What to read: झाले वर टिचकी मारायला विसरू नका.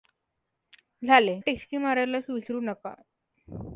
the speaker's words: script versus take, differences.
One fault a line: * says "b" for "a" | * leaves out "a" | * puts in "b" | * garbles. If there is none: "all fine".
* leaves out "वर"